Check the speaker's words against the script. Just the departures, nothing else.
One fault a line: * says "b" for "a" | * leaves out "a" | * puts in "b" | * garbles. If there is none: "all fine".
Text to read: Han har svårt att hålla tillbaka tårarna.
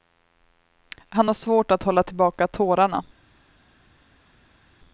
all fine